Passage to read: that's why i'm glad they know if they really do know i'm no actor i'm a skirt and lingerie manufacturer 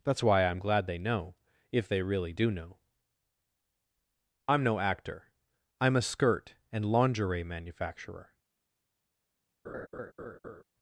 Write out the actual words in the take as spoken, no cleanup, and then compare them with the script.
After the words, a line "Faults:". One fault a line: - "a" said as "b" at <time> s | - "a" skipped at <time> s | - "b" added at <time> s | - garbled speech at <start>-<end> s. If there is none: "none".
that's why i'm glad they know if they really do know i'm no actor i'm a skirt and lingerie manufacturer
Faults:
none